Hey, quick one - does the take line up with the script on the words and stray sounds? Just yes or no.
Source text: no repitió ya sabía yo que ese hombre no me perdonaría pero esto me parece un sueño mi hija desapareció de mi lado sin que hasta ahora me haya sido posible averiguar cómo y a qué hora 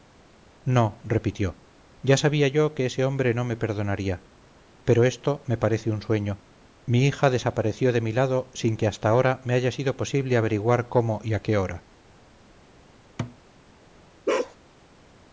no